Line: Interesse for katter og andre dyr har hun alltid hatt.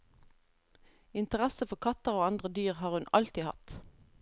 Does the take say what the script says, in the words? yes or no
yes